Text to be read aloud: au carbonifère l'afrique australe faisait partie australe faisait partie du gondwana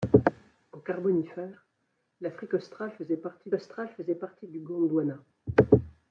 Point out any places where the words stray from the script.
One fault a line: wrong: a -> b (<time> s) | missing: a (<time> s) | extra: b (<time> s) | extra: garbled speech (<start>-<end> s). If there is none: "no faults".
no faults